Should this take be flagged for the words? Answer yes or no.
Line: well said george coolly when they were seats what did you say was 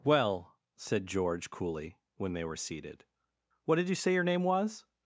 yes